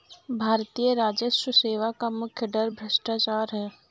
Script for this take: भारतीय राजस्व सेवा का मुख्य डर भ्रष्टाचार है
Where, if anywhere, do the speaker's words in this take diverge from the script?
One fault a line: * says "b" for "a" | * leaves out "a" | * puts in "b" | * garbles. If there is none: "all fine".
all fine